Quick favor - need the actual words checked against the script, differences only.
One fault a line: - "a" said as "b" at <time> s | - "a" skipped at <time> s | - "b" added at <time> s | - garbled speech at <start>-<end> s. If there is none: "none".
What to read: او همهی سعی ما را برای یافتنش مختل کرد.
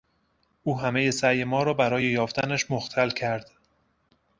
none